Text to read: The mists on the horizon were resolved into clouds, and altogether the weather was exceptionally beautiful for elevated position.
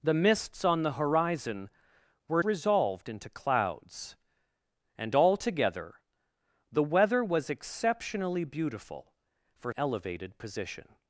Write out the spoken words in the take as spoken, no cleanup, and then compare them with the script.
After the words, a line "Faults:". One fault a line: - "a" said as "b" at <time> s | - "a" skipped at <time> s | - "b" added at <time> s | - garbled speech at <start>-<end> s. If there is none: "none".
The mists on the horizon were resolved into clouds, and altogether the weather was exceptionally beautiful for elevated position.
Faults:
none